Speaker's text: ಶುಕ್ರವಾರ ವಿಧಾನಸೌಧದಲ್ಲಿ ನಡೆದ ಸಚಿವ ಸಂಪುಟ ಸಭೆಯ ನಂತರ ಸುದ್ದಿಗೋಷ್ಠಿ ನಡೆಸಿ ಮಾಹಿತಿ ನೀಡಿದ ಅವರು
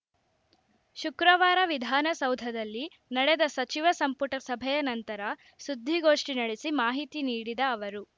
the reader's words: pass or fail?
pass